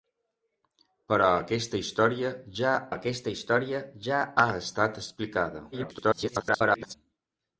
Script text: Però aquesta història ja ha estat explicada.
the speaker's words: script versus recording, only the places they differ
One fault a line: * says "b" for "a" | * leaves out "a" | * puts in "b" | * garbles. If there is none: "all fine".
* puts in "aquesta història ja"
* garbles